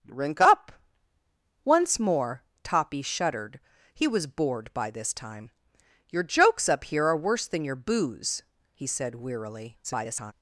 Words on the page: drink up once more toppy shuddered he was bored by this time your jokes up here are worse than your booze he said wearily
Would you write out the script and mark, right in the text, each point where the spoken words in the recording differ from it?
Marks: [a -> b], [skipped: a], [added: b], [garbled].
drink up once more toppy shuddered he was bored by this time your jokes up here are worse than your booze he said wearily [garbled]